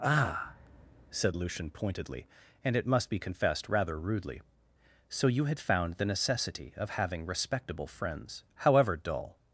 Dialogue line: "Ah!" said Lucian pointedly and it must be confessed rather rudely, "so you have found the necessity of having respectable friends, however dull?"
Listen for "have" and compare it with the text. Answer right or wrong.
wrong